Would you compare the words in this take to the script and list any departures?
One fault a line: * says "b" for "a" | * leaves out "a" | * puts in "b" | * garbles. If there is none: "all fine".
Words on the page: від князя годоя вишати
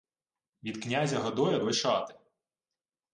all fine